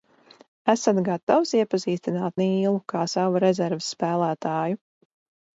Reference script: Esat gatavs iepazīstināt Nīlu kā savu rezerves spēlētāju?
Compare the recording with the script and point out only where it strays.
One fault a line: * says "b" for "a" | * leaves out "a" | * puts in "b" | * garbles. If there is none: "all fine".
all fine